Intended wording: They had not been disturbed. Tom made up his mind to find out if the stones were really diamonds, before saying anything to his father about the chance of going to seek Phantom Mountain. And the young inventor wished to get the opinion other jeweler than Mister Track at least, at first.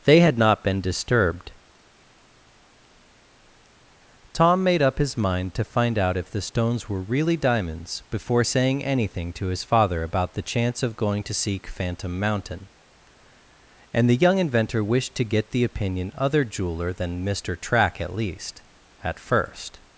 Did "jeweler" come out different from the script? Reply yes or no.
no